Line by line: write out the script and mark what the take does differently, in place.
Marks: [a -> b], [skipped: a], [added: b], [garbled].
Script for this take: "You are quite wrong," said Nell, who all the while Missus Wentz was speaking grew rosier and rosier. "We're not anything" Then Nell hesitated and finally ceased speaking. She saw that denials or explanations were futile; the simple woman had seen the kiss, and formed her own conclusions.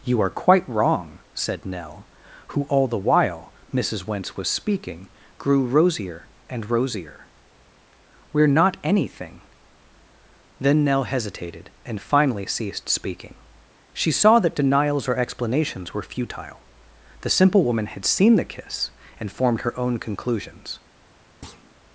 "You are quite wrong," said Nell, who all the while Missus Wentz was speaking grew rosier and rosier. "We're not anything" Then Nell hesitated and finally ceased speaking. She saw that denials or explanations were futile; the simple woman had seen the kiss, and formed her own conclusions.